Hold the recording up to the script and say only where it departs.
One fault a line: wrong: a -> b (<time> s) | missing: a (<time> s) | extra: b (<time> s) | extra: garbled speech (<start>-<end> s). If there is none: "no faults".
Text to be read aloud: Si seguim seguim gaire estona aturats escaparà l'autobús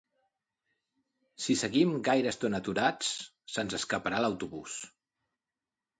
missing: seguim (1.9 s)
extra: se'ns (3.5 s)